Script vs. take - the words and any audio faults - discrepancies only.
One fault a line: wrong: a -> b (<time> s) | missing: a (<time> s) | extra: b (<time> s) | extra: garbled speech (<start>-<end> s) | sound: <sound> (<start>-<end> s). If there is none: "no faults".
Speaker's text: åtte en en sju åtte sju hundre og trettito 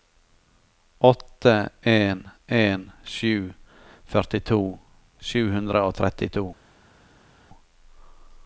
wrong: åtte -> førtito (4.1 s)